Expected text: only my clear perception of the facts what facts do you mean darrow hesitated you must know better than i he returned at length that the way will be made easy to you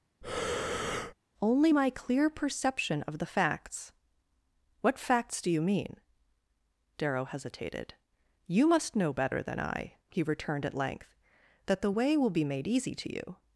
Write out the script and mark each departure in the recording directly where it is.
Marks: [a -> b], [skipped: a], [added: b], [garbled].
only my clear perception of the facts what facts do you mean darrow hesitated you must know better than i he returned at length that the way will be made easy to you